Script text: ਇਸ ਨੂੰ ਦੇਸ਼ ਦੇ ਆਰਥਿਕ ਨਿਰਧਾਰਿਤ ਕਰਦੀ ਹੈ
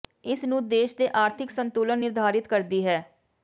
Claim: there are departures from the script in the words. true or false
true